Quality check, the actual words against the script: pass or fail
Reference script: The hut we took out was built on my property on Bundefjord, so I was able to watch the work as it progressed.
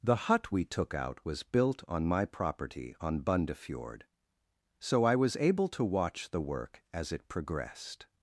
pass